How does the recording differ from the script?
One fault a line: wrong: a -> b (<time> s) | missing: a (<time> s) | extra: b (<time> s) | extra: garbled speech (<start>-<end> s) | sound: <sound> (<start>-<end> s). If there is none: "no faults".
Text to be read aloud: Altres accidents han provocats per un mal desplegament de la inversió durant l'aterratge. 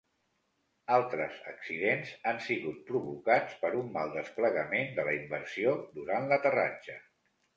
extra: sigut (2.5 s)